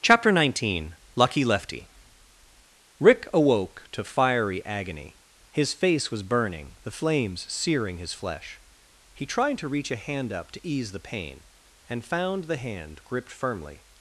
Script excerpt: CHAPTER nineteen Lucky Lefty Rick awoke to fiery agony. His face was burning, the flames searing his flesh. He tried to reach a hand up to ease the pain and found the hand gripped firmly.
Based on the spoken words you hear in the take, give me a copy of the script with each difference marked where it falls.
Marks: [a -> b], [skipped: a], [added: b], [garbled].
CHAPTER nineteen Lucky Lefty Rick awoke to fiery agony. His face was burning, the flames searing his flesh. He tried to reach a hand up to ease the pain and found the hand gripped firmly.